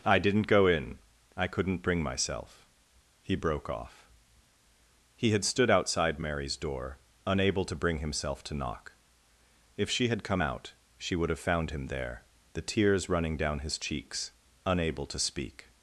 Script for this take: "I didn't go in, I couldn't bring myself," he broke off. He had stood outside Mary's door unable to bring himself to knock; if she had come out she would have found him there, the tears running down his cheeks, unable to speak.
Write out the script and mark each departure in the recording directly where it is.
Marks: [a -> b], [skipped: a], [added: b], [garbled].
"I didn't go in, I couldn't bring myself," he broke off. He had stood outside Mary's door unable to bring himself to knock; if she had come out she would have found him there, the tears running down his cheeks, unable to speak.